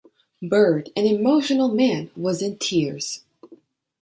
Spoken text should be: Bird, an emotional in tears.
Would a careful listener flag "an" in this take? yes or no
no